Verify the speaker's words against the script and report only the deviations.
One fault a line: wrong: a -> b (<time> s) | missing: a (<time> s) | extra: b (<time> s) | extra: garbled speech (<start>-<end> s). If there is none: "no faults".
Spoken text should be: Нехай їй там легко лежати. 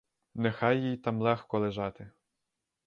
no faults